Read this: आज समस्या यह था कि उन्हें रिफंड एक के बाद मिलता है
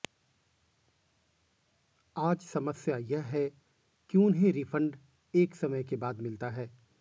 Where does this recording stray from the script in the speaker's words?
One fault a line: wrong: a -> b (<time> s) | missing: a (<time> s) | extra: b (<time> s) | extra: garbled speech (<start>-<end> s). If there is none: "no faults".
wrong: था -> है (3.2 s)
extra: समय (5.5 s)